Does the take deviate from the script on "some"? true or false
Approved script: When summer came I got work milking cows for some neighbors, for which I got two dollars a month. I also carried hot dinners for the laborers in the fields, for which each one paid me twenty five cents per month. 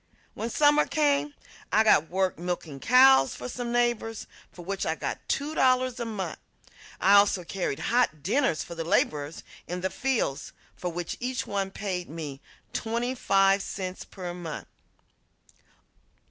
false